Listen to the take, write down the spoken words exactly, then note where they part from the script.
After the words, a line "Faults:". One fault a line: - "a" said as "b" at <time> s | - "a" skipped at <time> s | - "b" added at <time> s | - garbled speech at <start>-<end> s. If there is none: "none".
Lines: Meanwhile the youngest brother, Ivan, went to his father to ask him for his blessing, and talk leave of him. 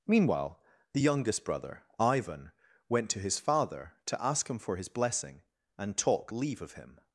Meanwhile the youngest brother, Ivan, went to his father to ask him for his blessing, and talk leave of him.
Faults:
none